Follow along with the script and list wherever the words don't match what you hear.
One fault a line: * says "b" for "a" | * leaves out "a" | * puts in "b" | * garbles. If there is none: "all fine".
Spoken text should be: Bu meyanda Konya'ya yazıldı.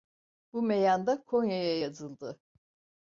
all fine